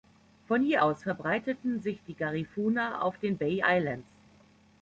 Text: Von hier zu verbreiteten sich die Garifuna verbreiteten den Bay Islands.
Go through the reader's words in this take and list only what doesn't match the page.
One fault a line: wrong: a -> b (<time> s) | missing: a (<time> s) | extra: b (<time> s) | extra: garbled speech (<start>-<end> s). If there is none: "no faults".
wrong: zu -> aus (0.8 s)
wrong: verbreiteten -> auf (3.0 s)